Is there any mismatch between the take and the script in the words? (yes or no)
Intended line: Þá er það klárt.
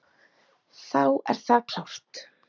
no